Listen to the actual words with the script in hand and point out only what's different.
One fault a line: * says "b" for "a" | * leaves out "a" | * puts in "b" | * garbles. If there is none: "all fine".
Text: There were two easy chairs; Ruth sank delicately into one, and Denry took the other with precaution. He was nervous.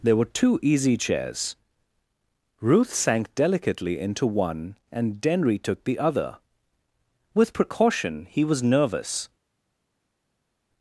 all fine